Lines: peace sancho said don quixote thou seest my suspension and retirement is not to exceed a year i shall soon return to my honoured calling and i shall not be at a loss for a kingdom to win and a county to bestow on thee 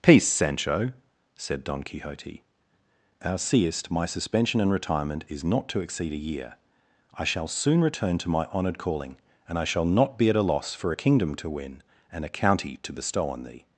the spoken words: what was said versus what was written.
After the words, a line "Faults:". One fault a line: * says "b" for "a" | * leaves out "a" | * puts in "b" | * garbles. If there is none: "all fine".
peace sancho said don quixote thou seest my suspension and retirement is not to exceed a year i shall soon return to my honoured calling and i shall not be at a loss for a kingdom to win and a county to bestow on thee
Faults:
all fine